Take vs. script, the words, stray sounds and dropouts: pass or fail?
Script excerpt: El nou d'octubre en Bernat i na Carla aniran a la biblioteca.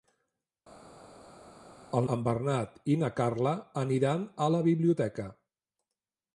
fail